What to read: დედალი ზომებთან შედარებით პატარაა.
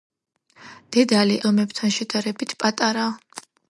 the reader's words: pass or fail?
pass